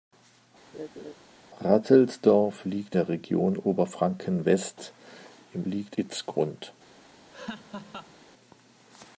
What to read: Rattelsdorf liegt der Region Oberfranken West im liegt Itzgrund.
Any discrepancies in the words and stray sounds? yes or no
yes